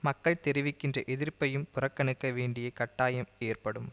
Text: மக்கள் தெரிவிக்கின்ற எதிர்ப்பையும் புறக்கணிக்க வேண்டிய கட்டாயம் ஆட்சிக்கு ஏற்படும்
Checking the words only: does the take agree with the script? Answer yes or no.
no